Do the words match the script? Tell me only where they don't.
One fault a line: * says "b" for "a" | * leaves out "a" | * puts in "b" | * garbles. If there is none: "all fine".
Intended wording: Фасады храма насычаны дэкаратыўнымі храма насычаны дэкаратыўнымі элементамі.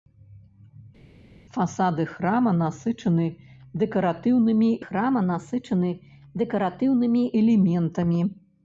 all fine